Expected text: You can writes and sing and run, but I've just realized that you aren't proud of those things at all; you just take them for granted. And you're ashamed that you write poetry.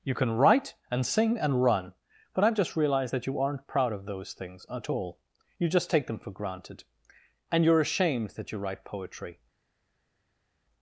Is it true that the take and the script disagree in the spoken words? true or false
true